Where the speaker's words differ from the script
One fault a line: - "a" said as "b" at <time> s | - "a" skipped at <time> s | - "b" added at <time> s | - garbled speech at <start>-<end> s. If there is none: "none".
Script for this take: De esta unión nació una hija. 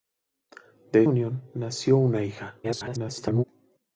- "esta" skipped at 1.0 s
- garbled speech at 2.6-3.4 s